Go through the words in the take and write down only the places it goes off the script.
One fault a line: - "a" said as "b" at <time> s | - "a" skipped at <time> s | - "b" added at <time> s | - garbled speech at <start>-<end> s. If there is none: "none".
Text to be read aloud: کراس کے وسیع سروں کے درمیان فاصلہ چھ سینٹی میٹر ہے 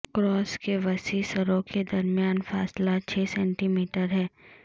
none